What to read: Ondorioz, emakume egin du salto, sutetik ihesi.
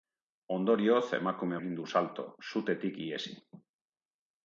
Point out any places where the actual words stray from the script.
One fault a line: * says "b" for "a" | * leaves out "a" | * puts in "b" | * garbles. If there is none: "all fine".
all fine